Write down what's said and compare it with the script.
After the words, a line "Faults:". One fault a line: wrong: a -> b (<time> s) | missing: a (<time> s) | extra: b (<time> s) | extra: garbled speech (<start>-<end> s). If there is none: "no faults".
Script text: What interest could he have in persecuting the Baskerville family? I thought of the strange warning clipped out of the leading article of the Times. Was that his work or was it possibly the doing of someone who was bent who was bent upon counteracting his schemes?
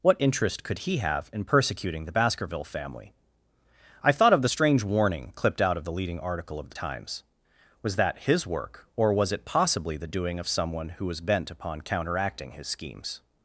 What interest could he have in persecuting the Baskerville family? I thought of the strange warning clipped out of the leading article of the Times. Was that his work or was it possibly the doing of someone who was bent upon counteracting his schemes?
Faults:
missing: who was bent (11.5 s)